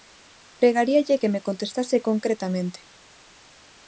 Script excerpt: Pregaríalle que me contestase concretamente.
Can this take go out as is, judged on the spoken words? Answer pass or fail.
pass